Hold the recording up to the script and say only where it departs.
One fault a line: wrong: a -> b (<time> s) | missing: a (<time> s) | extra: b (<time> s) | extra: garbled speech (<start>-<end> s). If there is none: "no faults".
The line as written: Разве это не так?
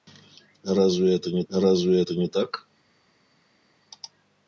extra: разве это не (1.5 s)